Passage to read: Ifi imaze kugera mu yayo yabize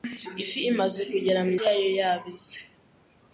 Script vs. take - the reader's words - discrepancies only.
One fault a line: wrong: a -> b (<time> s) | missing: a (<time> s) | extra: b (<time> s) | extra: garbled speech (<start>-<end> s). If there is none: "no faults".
no faults